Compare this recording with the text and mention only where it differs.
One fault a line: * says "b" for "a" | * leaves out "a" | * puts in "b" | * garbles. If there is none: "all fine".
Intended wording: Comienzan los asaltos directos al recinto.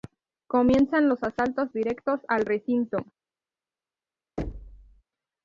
all fine